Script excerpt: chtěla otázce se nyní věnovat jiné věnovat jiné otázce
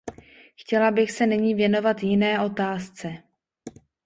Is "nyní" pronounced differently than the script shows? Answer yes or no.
no